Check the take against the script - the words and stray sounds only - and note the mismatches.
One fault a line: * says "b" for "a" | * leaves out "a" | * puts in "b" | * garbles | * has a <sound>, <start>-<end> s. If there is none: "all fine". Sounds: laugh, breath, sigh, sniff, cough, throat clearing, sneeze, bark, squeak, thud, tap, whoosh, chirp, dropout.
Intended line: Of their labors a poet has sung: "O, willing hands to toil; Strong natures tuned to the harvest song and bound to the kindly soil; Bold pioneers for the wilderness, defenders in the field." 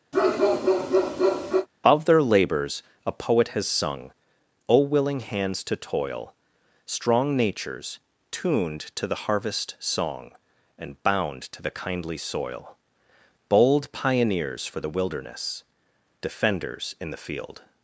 * has a bark, 0.1-1.7 s